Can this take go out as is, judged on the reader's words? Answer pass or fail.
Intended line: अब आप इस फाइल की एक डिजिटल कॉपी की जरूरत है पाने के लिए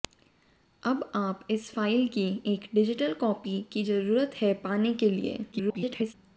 fail